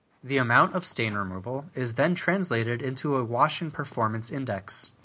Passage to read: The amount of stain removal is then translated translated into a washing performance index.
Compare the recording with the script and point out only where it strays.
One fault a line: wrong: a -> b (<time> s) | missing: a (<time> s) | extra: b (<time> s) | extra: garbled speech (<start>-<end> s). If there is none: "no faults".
missing: translated (2.8 s)